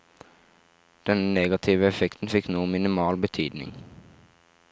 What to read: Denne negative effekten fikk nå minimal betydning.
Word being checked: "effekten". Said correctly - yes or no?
yes